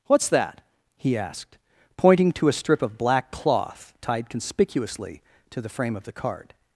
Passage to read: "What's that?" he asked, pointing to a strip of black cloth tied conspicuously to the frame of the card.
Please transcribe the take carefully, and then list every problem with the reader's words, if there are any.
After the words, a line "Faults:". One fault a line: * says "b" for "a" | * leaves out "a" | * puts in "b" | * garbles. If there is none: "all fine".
"What's that?" he asked, pointing to a strip of black cloth tied conspicuously to the frame of the card.
Faults:
all fine